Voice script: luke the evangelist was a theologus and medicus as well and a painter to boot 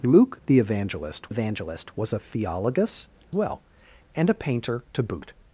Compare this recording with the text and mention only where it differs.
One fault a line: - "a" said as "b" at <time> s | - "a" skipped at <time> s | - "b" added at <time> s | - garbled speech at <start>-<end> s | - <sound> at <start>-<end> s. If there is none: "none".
- "evangelist" added at 1.3 s
- "and medicus as" skipped at 3.1 s